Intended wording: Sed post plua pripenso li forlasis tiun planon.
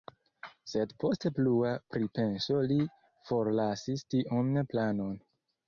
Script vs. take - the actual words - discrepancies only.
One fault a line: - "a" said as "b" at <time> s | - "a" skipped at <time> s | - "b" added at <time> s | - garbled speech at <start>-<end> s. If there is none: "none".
none